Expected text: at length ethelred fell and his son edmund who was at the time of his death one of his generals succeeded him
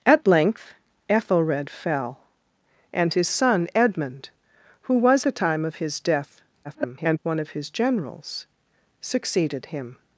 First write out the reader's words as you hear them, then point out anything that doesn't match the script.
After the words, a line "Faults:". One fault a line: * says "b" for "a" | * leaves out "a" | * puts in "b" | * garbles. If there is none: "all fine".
at length ethelred fell and his son edmund who was the time of his death [garbled] one of his generals succeeded him
Faults:
* leaves out "at"
* garbles